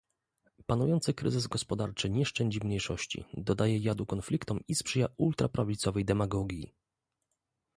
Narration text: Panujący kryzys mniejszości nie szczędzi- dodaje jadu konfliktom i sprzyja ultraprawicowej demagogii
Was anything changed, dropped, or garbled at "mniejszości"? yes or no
yes